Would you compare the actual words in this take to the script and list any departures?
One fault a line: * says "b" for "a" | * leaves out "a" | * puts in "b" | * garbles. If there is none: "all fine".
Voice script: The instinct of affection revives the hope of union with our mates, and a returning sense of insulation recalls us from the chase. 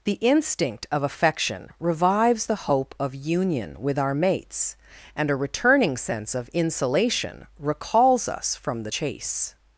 all fine